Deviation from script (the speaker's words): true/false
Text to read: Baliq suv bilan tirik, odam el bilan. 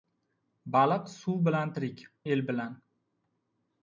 true